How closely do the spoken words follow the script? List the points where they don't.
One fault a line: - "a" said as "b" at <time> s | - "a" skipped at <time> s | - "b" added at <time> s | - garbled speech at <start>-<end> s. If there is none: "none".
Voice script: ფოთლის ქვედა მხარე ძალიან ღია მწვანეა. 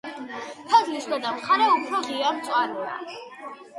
- "ძალიან" said as "უფრო" at 1.8 s